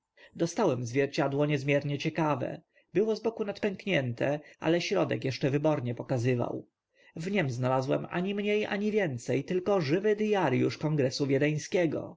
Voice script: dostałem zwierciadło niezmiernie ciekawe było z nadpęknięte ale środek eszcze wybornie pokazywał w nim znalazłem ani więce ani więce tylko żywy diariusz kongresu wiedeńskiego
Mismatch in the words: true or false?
true